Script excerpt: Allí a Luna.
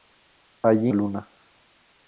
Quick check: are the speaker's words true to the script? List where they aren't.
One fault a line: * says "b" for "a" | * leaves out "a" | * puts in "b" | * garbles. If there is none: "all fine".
all fine